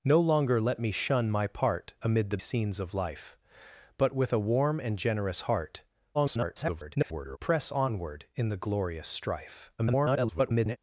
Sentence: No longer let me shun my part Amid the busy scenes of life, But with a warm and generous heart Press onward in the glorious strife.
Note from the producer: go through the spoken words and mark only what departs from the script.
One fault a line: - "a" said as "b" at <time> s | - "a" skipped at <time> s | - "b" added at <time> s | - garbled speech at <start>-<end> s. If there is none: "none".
- "busy" skipped at 2.4 s
- garbled speech at 6.1-7.4 s
- garbled speech at 9.8-10.8 s